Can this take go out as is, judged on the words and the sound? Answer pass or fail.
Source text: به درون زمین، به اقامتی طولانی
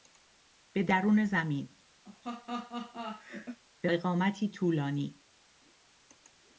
fail